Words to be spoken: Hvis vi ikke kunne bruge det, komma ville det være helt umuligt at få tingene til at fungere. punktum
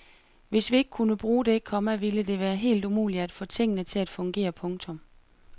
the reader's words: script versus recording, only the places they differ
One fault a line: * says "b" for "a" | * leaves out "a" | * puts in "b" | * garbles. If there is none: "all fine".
all fine